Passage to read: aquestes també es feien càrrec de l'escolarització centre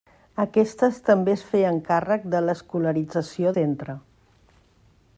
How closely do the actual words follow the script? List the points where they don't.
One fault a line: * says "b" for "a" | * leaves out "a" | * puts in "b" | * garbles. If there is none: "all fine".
all fine